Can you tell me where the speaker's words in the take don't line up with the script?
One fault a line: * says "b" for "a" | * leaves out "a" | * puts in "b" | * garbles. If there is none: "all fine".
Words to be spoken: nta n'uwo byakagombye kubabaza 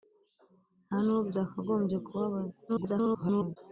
* garbles